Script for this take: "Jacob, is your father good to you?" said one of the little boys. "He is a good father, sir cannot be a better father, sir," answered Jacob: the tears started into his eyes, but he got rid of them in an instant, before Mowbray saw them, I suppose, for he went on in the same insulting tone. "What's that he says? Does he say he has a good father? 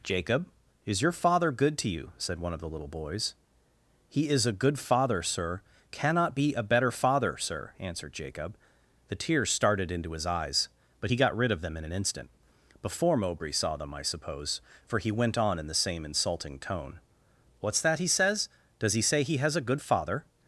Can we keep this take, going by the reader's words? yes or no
yes